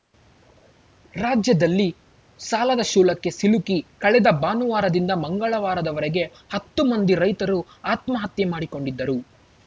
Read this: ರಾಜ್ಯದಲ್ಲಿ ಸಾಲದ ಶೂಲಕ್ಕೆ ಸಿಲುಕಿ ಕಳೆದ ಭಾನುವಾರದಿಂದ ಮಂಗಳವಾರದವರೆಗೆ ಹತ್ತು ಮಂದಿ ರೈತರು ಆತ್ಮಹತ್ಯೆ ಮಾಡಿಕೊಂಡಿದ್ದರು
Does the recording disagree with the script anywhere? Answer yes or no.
no